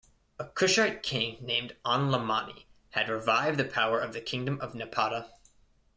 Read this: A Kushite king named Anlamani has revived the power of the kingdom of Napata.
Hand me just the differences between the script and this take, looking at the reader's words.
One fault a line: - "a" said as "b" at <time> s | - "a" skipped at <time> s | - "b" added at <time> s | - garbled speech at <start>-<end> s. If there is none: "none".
- "has" said as "had" at 2.9 s